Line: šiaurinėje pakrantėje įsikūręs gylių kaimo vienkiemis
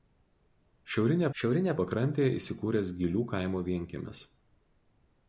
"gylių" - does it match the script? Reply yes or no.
yes